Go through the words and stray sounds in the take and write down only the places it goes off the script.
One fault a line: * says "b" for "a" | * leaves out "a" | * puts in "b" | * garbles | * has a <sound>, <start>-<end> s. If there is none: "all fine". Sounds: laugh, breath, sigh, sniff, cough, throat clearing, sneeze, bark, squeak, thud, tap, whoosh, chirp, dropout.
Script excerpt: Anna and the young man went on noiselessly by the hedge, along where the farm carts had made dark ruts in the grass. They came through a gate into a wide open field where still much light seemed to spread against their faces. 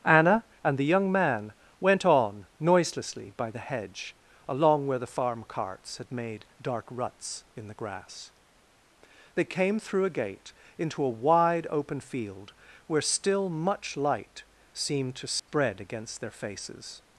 * has a dropout, 15.4-15.5 s